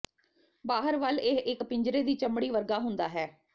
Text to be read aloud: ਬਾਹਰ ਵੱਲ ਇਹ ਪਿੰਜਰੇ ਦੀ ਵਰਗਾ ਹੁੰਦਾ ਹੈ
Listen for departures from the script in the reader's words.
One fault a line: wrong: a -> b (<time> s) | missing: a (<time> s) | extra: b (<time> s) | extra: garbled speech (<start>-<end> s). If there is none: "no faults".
extra: ਇੱਕ (1.5 s)
extra: ਚਮੜੀ (2.1 s)